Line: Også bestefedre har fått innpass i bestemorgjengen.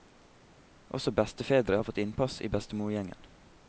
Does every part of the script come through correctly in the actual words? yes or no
yes